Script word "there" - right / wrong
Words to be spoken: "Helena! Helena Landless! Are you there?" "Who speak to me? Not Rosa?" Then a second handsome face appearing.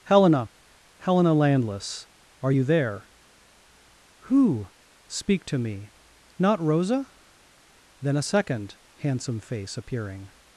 right